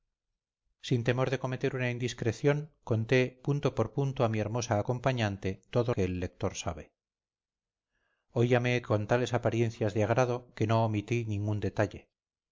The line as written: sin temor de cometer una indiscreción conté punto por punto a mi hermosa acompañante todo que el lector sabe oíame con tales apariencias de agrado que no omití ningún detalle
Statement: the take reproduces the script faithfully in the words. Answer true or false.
true